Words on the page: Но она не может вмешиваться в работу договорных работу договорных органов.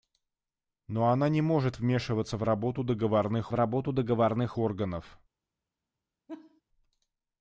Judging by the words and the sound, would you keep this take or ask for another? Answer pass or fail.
fail